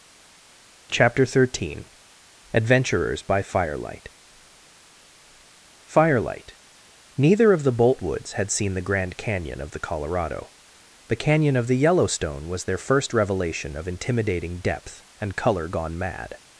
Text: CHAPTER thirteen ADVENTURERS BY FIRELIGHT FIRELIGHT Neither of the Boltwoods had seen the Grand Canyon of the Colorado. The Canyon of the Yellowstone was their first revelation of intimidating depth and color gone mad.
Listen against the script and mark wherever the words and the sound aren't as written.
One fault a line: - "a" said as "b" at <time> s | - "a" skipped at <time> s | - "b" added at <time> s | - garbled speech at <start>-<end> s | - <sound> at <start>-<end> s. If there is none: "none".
none